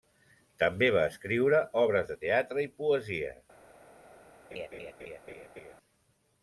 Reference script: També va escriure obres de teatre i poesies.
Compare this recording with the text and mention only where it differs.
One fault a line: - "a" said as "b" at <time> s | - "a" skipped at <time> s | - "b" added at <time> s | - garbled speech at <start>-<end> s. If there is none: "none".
none